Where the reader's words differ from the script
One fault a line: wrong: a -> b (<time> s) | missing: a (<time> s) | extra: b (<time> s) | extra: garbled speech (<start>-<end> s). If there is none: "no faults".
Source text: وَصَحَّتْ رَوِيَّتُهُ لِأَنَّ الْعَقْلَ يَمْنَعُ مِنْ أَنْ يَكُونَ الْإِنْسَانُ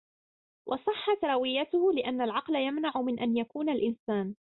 no faults